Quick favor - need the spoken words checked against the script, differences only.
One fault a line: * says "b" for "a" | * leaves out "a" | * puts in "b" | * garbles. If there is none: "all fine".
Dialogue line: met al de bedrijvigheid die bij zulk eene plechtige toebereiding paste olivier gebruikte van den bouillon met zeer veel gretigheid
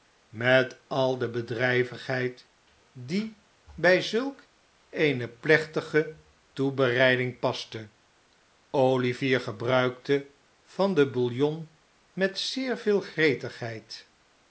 all fine